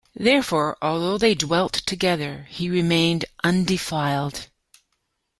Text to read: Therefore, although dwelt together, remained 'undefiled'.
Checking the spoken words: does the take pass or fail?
fail